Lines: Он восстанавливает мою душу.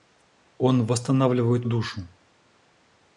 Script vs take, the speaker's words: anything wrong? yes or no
yes